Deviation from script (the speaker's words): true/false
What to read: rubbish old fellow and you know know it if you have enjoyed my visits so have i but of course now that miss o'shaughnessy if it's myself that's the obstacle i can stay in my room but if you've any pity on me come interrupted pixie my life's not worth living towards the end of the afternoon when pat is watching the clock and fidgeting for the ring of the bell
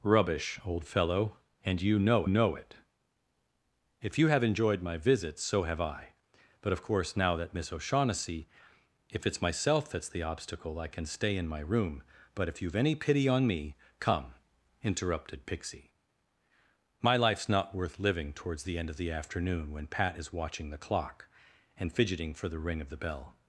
false